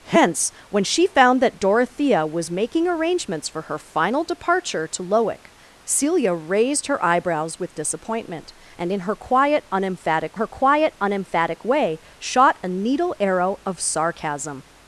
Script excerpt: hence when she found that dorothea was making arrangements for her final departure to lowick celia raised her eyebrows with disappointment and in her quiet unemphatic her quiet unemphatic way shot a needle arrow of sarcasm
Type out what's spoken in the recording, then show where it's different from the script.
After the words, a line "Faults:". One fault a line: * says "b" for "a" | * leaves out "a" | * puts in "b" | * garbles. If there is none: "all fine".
hence when she found that dorothea was making arrangements for her final departure to lowick celia raised her eyebrows with disappointment and in her quiet unemphatic her quiet unemphatic way shot a needle arrow of sarcasm
Faults:
all fine